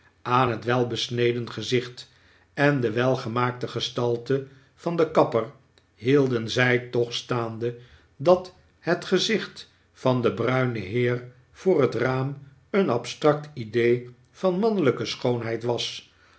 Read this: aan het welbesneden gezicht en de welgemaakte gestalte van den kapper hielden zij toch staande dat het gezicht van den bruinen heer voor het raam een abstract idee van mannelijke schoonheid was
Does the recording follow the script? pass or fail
pass